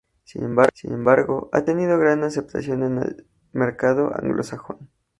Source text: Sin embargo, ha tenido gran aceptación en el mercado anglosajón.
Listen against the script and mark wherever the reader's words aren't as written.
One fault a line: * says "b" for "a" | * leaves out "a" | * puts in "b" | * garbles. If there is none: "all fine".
all fine